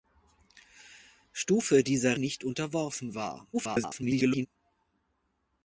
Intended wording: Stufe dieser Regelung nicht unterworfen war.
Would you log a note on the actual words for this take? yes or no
yes